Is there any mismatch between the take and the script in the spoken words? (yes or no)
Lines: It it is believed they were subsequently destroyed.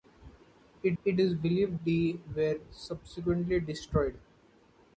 no